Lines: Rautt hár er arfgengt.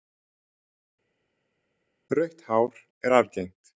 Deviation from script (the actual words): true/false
false